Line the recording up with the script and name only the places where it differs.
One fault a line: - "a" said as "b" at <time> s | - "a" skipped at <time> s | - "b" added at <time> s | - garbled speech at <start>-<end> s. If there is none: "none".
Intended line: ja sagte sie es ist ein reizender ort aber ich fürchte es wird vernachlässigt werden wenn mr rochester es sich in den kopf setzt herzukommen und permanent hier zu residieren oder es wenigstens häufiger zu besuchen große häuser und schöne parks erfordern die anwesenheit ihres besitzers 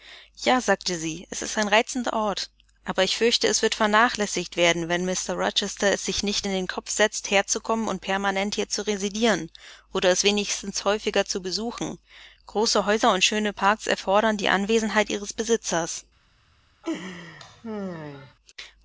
- "nicht" added at 6.2 s